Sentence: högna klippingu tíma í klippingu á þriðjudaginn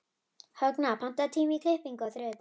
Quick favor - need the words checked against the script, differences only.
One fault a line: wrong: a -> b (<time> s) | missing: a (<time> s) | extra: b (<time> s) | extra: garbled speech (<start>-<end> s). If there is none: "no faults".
wrong: klippingu -> pantaðu (1.0 s)